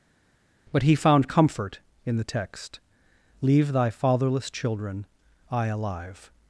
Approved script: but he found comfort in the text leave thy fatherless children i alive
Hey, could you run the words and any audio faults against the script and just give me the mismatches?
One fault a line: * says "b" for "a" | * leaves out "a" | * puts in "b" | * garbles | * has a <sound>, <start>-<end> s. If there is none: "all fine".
all fine